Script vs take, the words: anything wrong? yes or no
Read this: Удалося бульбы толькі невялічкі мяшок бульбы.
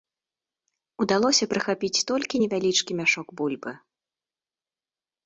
yes